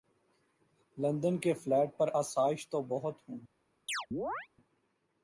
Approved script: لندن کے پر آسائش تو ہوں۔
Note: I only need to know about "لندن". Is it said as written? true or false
true